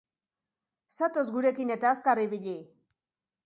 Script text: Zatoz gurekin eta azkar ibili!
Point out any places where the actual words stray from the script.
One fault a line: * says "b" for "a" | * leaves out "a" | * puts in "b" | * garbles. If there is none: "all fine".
all fine